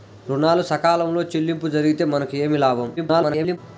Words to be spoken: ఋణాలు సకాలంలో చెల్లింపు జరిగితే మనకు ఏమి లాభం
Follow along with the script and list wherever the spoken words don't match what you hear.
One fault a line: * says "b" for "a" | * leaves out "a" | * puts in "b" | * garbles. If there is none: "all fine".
* garbles